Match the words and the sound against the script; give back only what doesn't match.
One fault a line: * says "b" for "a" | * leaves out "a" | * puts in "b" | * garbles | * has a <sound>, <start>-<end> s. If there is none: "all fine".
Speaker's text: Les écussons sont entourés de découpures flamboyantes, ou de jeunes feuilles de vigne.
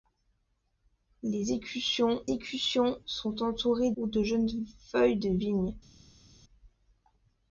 * puts in "écussons"
* leaves out "de découpures flamboyantes"